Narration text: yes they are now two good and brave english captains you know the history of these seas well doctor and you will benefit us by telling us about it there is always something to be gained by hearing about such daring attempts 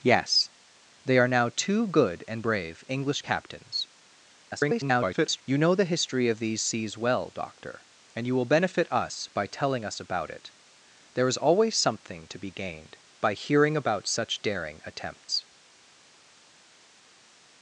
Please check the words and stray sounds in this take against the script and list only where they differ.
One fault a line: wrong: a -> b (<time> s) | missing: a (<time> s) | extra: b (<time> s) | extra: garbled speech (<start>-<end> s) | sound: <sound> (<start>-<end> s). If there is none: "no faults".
extra: garbled speech (4.4-5.4 s)